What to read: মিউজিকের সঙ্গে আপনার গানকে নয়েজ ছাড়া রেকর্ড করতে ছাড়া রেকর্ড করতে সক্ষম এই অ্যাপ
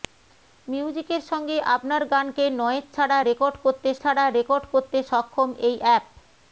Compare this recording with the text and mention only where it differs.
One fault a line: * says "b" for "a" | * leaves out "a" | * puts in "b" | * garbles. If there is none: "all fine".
all fine